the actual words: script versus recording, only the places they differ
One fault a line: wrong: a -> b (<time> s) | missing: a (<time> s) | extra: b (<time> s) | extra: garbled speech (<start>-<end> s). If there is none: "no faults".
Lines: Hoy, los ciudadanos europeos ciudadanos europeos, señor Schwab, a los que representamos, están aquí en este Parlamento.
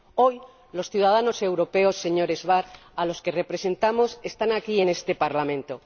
missing: ciudadanos europeos (1.9 s)